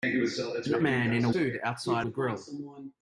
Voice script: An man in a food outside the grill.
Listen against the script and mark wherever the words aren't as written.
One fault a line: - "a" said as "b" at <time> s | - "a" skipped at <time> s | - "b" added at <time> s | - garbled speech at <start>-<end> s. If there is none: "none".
none